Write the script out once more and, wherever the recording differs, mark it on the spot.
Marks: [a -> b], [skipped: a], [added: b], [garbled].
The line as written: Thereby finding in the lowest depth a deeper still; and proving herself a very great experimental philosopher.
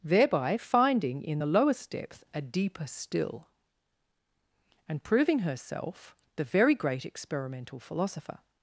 Thereby finding in the lowest depth a deeper still; and proving herself [a -> the] very great experimental philosopher.